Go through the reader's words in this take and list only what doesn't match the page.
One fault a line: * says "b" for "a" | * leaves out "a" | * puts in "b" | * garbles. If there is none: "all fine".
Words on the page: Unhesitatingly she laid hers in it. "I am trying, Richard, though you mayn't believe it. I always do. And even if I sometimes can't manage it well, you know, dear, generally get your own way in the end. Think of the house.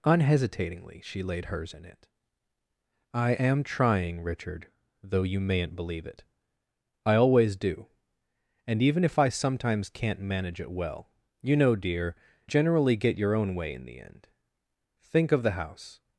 all fine